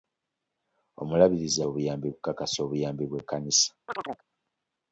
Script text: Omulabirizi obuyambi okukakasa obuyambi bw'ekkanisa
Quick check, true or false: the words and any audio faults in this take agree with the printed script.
false